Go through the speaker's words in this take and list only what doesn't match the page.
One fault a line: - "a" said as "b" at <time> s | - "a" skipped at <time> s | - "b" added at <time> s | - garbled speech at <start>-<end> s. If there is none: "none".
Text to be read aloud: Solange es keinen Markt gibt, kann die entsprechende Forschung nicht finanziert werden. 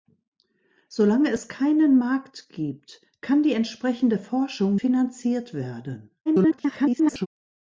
- "nicht" skipped at 4.8 s
- garbled speech at 6.3-7.3 s